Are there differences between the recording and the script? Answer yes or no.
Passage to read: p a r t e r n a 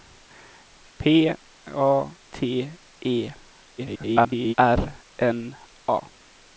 yes